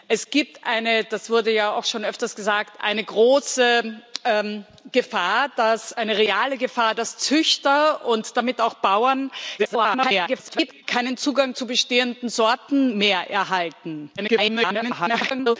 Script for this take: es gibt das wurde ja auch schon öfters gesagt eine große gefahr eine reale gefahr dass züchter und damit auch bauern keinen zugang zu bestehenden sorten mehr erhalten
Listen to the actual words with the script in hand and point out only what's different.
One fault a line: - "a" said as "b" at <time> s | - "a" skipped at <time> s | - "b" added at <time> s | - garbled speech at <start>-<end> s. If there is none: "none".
- garbled speech at 9.6-10.8 s
- garbled speech at 14.2-15.6 s